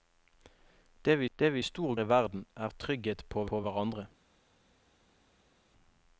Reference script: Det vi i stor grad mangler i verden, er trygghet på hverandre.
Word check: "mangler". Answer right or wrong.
wrong